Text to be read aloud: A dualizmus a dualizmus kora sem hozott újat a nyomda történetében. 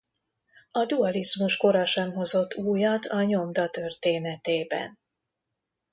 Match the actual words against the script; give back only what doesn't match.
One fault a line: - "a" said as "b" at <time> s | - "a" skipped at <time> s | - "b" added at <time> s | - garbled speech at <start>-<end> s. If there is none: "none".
- "a dualizmus" skipped at 1.6 s